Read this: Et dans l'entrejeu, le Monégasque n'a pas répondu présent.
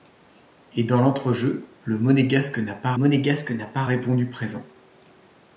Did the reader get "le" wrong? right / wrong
right